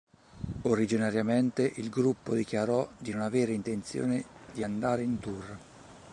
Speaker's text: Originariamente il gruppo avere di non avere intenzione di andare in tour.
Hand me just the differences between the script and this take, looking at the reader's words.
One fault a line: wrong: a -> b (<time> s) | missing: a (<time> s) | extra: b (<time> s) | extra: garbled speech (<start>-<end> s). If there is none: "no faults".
wrong: avere -> dichiarò (2.3 s)